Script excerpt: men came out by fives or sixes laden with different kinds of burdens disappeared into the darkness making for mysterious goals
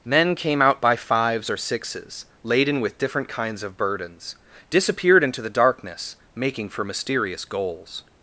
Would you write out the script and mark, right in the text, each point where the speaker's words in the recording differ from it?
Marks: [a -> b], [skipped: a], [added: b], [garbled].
men came out by fives or sixes laden with different kinds of burdens disappeared into the darkness making for mysterious goals